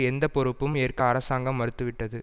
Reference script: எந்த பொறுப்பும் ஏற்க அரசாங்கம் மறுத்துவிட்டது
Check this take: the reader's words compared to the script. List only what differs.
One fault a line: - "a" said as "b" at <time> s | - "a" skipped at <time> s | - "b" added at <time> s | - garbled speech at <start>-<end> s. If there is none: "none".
none